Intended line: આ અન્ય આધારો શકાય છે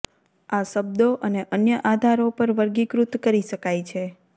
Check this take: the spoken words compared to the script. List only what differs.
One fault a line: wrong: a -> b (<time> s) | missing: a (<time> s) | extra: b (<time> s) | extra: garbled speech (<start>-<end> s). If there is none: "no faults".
extra: શબ્દો અને (0.6 s)
extra: પર વર્ગીકૃત કરી (2.4 s)